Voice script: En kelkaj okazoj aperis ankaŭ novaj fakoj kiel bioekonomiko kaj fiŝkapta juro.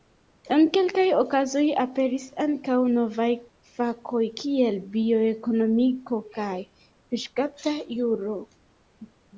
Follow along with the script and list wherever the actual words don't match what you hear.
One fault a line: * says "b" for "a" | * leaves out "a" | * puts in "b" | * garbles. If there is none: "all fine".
all fine